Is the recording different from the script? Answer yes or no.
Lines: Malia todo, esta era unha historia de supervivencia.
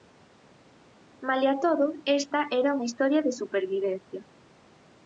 no